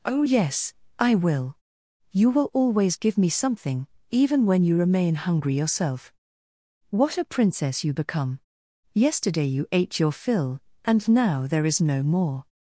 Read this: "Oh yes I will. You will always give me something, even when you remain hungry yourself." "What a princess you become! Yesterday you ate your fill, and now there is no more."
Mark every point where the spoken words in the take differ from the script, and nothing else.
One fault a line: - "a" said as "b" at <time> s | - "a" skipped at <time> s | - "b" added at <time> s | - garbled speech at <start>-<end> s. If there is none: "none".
none